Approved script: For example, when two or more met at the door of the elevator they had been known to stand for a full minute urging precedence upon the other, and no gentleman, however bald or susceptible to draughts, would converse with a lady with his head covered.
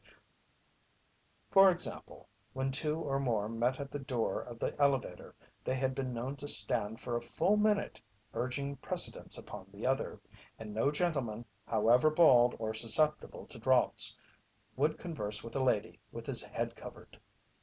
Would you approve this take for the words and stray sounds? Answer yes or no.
yes